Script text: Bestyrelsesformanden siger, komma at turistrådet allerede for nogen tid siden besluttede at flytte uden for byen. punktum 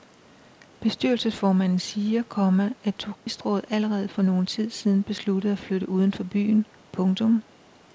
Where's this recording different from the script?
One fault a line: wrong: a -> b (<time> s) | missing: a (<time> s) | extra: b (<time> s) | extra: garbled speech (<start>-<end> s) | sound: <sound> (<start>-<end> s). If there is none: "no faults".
sound: dropout (3.1-3.3 s)